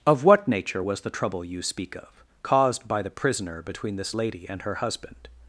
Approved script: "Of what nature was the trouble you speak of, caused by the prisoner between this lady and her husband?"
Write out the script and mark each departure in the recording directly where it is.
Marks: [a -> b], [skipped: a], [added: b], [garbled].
"Of what nature was the trouble you speak of, caused by the prisoner between this lady and her husband?"